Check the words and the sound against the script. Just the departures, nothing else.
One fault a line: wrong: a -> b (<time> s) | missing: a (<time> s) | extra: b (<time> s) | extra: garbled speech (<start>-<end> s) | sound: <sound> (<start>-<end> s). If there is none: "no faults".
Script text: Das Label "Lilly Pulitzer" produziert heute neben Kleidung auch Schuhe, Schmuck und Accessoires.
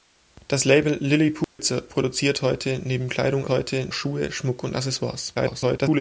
sound: dropout (1.4-1.6 s)
wrong: auch -> heute (3.5 s)
extra: garbled speech (5.3-6.0 s)